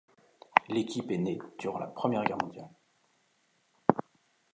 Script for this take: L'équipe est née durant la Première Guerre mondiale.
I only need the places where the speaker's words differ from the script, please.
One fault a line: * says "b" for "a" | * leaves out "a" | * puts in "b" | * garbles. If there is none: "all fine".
all fine